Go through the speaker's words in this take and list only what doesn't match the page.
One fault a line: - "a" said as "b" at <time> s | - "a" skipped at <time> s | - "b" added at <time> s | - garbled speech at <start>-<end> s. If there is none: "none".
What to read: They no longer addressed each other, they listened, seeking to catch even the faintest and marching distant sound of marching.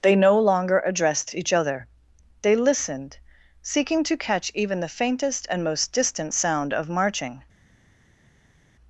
- "marching" said as "most" at 5.6 s